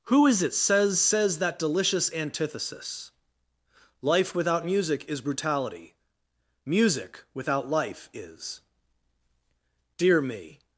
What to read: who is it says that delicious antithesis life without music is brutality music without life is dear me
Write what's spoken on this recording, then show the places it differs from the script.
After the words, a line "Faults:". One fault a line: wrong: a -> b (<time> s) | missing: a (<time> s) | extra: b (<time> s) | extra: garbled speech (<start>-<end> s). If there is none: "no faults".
who is it says says that delicious antithesis life without music is brutality music without life is dear me
Faults:
extra: says (1.0 s)